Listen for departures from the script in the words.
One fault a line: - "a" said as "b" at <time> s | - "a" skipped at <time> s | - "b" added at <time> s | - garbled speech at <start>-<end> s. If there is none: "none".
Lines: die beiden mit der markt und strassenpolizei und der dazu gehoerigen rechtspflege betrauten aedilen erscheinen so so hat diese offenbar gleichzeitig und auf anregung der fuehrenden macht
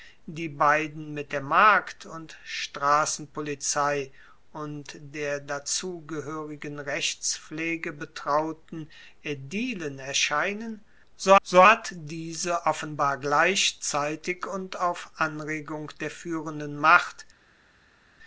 none